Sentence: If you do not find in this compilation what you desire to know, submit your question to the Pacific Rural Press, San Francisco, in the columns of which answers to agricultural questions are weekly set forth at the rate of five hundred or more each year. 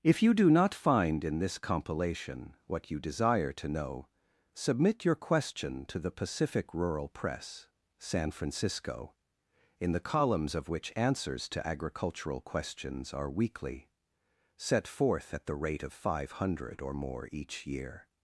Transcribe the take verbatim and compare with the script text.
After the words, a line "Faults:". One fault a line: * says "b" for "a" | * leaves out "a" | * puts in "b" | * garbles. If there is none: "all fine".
If you do not find in this compilation what you desire to know, submit your question to the Pacific Rural Press, San Francisco, in the columns of which answers to agricultural questions are weekly set forth at the rate of five hundred or more each year.
Faults:
all fine